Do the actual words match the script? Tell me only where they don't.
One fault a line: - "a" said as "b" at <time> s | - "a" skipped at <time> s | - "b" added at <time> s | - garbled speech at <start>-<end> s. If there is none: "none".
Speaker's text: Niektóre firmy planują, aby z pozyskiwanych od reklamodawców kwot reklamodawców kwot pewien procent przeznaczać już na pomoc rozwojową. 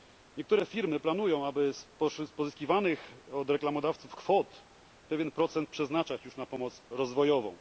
- "reklamodawców kwot" skipped at 4.6 s